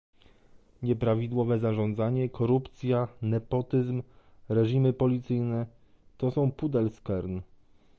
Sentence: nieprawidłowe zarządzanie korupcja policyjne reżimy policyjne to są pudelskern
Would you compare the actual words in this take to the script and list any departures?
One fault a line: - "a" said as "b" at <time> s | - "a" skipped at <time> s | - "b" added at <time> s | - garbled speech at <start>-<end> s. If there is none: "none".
- "policyjne" said as "nepotyzm" at 3.2 s